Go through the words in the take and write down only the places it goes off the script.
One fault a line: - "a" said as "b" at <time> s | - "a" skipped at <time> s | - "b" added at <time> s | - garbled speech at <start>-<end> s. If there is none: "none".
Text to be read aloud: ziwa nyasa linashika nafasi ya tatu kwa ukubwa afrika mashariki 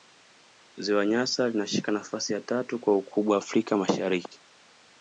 none